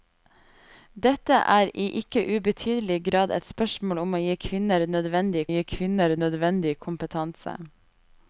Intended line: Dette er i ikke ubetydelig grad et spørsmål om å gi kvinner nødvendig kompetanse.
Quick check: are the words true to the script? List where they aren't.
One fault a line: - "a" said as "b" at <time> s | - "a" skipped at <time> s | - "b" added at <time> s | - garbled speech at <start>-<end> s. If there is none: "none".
- "gi kvinner nødvendig" added at 5.5 s